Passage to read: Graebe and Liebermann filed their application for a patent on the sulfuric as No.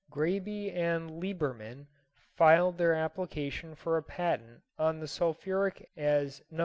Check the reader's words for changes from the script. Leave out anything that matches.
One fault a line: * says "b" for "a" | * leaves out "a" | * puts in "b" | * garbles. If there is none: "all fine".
all fine